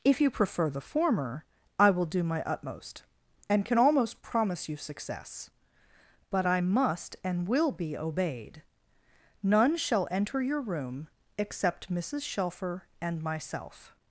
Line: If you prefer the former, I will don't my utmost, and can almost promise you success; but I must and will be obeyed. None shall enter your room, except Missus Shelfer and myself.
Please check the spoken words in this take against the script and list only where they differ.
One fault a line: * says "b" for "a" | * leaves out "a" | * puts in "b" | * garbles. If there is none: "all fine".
* says "do" for "don't"